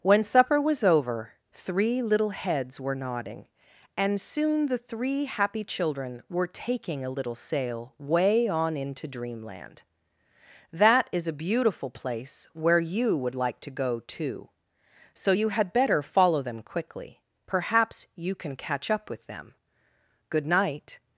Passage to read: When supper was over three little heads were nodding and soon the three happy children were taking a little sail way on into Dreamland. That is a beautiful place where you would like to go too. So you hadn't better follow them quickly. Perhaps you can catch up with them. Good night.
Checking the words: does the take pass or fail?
fail